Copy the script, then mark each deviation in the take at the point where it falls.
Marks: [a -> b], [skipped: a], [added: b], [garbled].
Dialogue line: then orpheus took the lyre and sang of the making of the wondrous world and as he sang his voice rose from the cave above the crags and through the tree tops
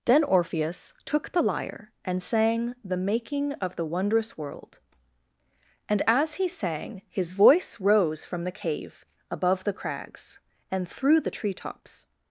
then orpheus took the lyre and sang [skipped: of] the making of the wondrous world and as he sang his voice rose from the cave above the crags and through the tree tops